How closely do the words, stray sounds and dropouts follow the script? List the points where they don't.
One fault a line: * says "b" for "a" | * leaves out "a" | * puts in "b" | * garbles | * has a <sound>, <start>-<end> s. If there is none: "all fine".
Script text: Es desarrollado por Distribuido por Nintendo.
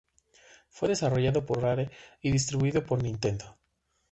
* says "Fue" for "Es"
* puts in "Rare y"